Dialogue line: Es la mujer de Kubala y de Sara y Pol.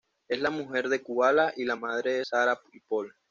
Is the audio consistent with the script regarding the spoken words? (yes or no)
no